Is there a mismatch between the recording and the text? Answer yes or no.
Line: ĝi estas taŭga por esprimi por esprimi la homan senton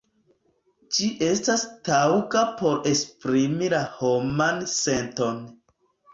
yes